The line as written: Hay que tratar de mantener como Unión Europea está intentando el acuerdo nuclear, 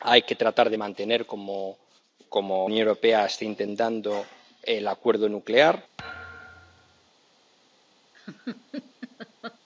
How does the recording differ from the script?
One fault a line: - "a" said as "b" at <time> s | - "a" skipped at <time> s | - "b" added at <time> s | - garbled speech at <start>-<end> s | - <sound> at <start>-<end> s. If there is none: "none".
- thud at 6.0-7.1 s
- laugh at 8.1-9.6 s